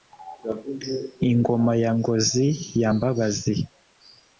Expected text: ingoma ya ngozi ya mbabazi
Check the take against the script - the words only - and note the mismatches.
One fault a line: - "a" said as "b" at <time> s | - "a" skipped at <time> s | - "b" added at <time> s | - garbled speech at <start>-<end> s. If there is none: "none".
none